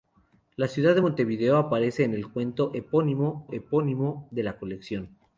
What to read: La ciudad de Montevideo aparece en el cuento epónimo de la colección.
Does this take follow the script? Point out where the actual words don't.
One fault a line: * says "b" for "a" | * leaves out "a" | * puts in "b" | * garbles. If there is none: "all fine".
* puts in "epónimo"